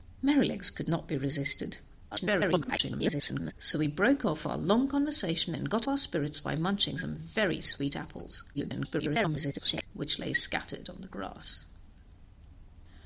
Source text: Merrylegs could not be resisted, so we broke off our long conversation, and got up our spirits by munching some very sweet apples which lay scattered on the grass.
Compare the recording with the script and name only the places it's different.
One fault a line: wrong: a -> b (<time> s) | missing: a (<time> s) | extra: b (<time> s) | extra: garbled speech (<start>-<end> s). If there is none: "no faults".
extra: garbled speech (2.1-3.5 s)
missing: up (5.9 s)
extra: garbled speech (8.5-9.9 s)